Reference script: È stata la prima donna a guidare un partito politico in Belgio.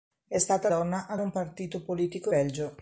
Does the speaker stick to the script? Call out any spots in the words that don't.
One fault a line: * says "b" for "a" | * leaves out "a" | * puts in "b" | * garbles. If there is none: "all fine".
* leaves out "la prima"
* leaves out "guidare"
* leaves out "in"